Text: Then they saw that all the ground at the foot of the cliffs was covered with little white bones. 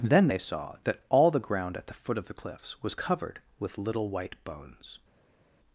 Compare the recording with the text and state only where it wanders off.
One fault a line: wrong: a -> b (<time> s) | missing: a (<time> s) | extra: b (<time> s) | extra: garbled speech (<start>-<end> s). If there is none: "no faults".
no faults